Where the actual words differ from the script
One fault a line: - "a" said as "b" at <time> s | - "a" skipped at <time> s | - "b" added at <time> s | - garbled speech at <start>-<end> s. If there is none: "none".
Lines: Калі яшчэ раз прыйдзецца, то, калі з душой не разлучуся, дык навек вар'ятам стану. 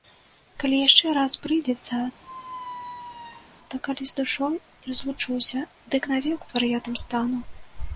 none